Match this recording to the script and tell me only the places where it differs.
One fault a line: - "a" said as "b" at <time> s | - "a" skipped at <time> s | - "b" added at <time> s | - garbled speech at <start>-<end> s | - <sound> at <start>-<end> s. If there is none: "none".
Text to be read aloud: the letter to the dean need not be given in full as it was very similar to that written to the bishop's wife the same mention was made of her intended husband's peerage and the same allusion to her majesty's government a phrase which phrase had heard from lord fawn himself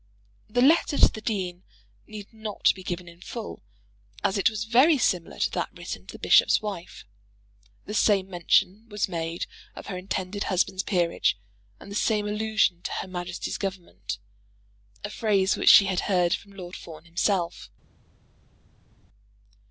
- "phrase" said as "she" at 15.7 s